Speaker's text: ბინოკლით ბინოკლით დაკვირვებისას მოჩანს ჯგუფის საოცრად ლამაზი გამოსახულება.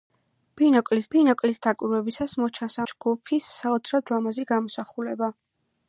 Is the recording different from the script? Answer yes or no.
no